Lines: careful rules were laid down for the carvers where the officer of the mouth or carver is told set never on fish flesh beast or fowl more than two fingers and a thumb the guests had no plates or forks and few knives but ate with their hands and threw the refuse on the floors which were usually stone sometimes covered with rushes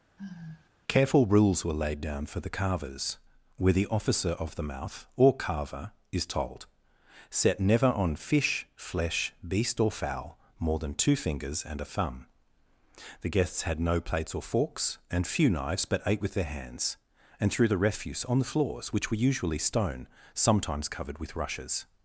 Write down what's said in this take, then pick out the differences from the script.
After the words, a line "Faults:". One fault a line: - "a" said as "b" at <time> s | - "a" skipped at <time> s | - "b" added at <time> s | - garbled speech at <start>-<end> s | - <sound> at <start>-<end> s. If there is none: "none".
careful rules were laid down for the carvers where the officer of the mouth or carver is told set never on fish flesh beast or fowl more than two fingers and a thumb the guests had no plates or forks and few knives but ate with their hands and threw the refuse on the floors which were usually stone sometimes covered with rushes
Faults:
- sigh at 0.2-0.7 s